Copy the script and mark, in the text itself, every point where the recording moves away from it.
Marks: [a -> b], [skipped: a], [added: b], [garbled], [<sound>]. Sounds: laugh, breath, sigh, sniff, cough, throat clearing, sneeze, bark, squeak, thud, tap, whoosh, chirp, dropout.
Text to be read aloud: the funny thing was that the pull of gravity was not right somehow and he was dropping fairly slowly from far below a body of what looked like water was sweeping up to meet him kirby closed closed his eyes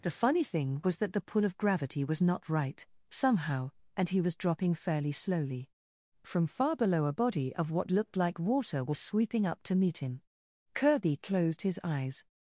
the funny thing was that the pull of gravity was not right somehow and he was dropping fairly slowly from far below a body of what looked like water was sweeping up to meet him kirby closed [skipped: closed] his eyes